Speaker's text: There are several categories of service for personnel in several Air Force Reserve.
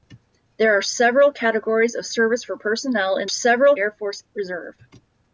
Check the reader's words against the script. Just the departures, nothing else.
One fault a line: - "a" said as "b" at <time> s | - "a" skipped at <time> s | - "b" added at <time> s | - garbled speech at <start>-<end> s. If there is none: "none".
none